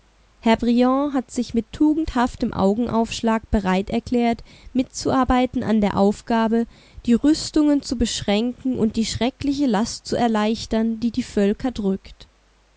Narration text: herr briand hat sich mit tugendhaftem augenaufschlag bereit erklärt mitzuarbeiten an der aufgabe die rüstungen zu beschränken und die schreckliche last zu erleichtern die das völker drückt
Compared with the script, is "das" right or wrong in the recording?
wrong